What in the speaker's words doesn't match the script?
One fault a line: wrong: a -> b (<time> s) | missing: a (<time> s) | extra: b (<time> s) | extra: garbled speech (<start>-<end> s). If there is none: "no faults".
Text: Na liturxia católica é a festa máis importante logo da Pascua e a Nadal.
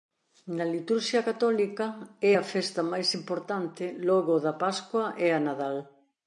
no faults